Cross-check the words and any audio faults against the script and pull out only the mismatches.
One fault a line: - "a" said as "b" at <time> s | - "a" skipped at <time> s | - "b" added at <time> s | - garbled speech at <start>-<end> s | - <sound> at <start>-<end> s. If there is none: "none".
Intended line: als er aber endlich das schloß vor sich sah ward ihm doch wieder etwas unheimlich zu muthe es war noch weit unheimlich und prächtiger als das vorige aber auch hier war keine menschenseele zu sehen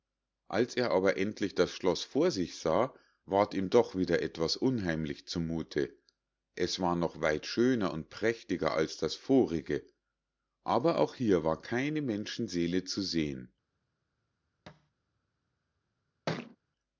- "unheimlich" said as "schöner" at 7.5 s
- thud at 14.7-14.9 s
- thud at 16.3-16.6 s